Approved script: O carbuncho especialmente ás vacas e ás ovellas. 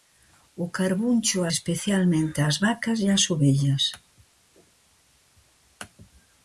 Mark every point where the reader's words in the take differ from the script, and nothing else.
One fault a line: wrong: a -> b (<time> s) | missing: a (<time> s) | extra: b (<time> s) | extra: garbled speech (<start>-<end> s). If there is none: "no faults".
no faults